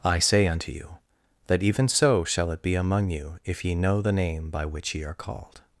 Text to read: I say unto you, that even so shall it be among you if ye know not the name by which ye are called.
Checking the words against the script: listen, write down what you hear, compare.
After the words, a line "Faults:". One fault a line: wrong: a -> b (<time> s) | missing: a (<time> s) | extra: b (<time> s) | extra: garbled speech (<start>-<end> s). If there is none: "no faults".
I say unto you, that even so shall it be among you if ye know the name by which ye are called.
Faults:
missing: not (4.0 s)